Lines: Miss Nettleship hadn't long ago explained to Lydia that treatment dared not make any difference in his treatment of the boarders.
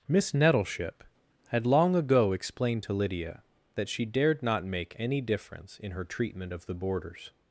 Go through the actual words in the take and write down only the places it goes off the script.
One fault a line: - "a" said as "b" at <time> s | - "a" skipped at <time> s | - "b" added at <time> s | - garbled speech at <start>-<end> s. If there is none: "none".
- "hadn't" said as "had" at 1.5 s
- "treatment" said as "she" at 3.9 s
- "his" said as "her" at 5.9 s